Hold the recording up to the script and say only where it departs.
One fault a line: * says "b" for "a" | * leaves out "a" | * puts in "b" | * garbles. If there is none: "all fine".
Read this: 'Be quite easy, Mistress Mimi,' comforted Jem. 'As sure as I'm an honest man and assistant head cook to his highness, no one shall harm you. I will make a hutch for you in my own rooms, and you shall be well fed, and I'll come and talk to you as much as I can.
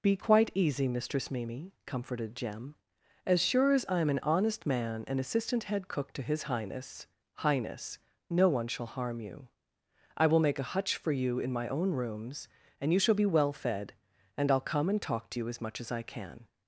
* puts in "highness"